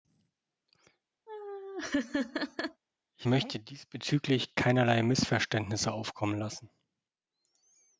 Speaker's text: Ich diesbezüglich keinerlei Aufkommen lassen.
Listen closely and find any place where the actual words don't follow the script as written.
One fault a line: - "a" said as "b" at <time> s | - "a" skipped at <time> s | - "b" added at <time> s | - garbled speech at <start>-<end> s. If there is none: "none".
- "möchte" added at 3.2 s
- "Missverständnisse" added at 5.0 s